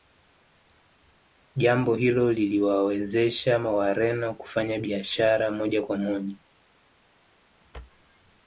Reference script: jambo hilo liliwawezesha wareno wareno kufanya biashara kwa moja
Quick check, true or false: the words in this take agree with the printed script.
false